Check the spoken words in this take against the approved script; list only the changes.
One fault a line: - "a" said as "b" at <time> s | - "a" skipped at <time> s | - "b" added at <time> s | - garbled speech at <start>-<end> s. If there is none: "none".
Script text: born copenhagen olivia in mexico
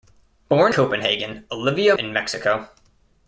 none